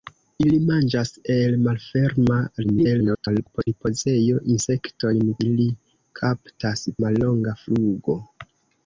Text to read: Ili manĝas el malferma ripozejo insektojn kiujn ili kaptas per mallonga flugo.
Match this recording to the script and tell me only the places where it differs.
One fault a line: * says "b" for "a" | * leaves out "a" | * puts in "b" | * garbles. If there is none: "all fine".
* garbles
* leaves out "kiujn"
* leaves out "per"